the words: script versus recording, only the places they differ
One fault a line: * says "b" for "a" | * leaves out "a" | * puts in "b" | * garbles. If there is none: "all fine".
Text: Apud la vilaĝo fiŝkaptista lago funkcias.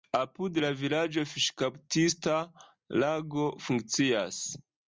all fine